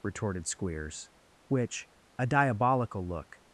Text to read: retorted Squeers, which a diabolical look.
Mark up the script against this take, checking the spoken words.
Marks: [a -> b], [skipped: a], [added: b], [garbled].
retorted Squeers, which a diabolical look.